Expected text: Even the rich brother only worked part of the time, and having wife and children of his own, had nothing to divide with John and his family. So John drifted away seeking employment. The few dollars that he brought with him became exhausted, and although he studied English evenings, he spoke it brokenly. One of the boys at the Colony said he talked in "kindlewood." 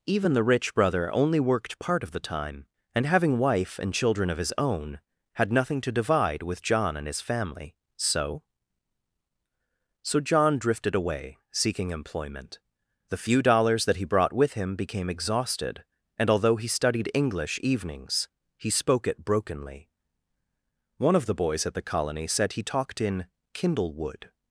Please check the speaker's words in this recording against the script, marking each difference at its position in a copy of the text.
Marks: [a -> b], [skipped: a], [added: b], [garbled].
Even the rich brother only worked part of the time, and having wife and children of his own, had nothing to divide with John and his family. So [added: So] John drifted away seeking employment. The few dollars that he brought with him became exhausted, and although he studied English evenings, he spoke it brokenly. One of the boys at the Colony said he talked in "kindlewood."